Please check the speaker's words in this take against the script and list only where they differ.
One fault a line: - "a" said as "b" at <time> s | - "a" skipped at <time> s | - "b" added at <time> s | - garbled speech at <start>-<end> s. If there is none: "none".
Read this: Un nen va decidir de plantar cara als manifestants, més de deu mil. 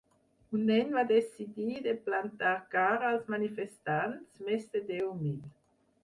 none